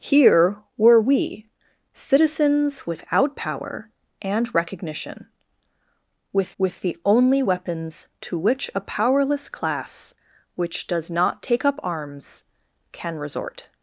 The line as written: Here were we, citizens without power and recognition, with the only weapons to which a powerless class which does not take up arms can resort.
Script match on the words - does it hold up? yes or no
no